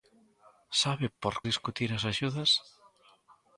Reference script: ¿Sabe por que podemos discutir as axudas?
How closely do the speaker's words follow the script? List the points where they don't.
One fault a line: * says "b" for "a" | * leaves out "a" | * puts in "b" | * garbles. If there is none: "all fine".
* leaves out "que podemos"